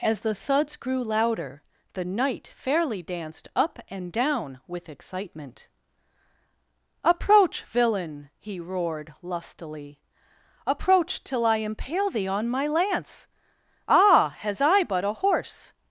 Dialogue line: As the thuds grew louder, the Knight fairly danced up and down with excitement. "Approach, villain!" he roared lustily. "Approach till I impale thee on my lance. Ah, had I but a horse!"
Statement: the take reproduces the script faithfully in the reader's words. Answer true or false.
false